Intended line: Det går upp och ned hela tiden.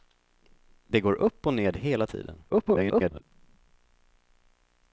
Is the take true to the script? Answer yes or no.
no